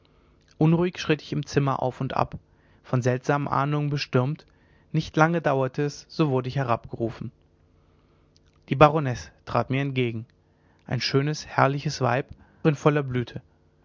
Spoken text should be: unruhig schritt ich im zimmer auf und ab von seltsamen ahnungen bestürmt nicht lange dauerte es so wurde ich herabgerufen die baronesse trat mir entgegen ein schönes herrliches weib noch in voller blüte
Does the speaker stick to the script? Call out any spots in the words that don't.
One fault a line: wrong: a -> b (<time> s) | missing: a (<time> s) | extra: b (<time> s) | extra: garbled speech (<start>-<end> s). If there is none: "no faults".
missing: noch (12.2 s)